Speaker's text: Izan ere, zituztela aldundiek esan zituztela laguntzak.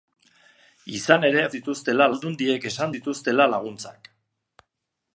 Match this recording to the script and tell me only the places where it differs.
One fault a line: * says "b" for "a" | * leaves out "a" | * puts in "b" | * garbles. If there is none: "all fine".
all fine